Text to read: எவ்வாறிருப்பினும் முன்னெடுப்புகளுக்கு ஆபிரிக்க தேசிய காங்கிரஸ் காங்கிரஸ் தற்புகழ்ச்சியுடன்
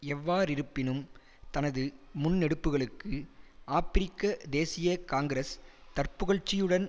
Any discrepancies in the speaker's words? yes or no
yes